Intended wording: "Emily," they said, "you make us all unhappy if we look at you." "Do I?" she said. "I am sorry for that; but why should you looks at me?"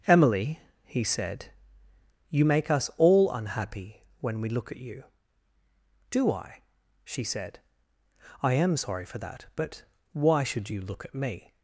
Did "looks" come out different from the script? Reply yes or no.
yes